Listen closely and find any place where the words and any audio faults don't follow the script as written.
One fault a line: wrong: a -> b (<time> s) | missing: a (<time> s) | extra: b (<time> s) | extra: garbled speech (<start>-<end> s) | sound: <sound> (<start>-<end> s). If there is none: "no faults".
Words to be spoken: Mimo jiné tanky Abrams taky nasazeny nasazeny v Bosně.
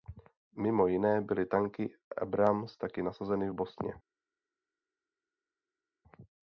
extra: byly (1.2 s)
missing: nasazeny (3.5 s)